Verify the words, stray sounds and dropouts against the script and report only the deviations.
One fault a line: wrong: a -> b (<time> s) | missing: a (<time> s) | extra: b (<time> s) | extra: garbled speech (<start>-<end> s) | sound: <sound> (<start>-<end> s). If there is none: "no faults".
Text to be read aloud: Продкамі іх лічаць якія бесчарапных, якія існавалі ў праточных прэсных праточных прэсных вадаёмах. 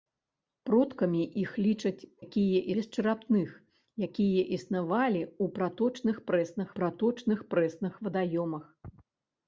no faults